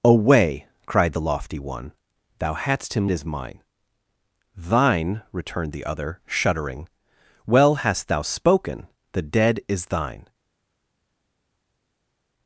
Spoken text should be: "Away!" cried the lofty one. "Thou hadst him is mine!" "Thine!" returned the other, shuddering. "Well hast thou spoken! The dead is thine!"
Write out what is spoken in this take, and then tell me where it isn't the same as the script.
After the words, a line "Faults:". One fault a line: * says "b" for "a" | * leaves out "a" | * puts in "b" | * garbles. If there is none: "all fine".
"Away!" cried the lofty one. "Thou hadst him is mine!" "Thine!" returned the other, shuddering. "Well hast thou spoken! The dead is thine!"
Faults:
all fine